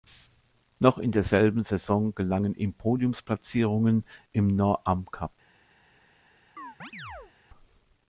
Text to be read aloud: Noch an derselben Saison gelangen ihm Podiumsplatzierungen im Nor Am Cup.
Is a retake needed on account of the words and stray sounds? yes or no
yes